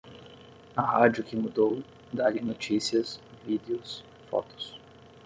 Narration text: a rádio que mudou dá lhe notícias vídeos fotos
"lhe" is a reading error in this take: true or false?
false